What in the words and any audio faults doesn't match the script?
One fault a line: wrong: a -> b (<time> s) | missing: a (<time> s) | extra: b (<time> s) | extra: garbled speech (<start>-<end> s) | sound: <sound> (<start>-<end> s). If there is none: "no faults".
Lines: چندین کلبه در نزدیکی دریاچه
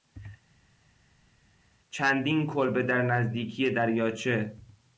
no faults